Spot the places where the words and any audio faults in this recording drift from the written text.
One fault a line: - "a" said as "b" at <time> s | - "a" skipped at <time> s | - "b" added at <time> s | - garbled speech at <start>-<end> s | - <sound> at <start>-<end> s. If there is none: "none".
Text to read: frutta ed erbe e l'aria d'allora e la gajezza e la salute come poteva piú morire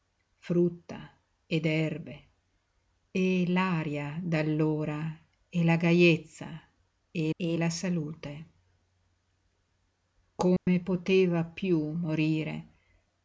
- "e" added at 7.4 s
- dropout at 10.6-10.7 s